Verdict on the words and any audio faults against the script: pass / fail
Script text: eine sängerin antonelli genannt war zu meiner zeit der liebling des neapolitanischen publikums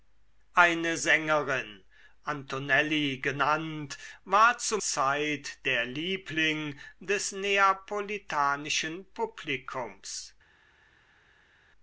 fail